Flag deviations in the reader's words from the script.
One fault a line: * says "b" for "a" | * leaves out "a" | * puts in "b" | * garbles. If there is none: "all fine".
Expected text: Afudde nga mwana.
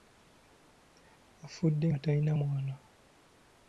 * puts in "talina"